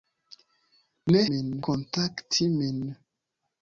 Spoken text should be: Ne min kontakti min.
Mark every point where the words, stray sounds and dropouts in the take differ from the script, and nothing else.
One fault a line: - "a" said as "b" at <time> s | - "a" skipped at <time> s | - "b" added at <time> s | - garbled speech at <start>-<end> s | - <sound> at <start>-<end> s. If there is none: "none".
none